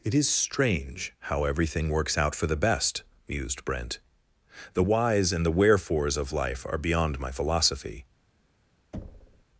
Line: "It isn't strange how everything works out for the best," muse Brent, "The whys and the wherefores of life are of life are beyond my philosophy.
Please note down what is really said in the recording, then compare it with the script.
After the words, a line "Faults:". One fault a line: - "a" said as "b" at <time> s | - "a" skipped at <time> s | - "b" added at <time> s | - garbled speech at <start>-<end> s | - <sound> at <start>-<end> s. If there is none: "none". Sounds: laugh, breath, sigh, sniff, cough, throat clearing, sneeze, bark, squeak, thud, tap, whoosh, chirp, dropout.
"It is strange how everything works out for the best," mused Brent, "The whys and the wherefores of life are beyond my philosophy.
Faults:
- "isn't" said as "is" at 0.1 s
- "muse" said as "mused" at 3.3 s
- "of life are" skipped at 6.8 s
- thud at 8.9-9.4 s